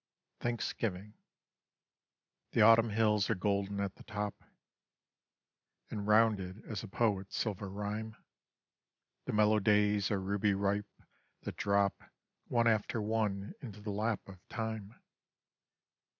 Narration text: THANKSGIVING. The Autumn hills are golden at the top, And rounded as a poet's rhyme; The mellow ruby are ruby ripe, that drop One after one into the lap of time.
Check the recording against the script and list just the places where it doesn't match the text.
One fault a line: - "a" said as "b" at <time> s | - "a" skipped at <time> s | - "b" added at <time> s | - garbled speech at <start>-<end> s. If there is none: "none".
- "silver" added at 7.4 s
- "ruby" said as "days" at 9.6 s